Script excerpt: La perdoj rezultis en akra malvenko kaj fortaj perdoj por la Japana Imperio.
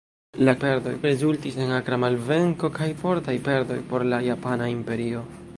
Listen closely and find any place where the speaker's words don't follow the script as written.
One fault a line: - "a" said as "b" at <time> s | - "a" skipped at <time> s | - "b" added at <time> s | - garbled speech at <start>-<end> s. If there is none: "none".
none